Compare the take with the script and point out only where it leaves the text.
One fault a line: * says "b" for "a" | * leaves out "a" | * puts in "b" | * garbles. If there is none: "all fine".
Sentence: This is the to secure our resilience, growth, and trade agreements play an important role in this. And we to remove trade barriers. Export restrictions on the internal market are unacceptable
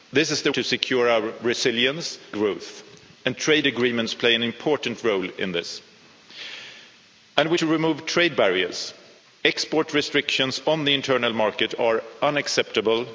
all fine